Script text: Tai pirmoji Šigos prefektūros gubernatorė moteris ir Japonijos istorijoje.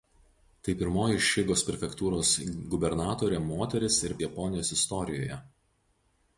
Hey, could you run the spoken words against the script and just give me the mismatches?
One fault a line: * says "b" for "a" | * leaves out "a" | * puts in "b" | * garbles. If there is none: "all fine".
all fine